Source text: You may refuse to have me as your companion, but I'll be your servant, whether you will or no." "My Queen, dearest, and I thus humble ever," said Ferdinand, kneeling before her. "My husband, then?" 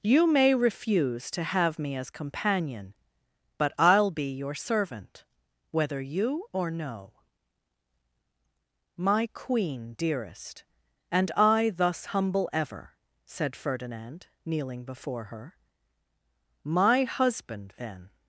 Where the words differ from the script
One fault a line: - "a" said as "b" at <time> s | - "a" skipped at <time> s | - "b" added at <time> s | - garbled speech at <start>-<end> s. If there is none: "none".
- "your" skipped at 2.1 s
- "will" skipped at 6.5 s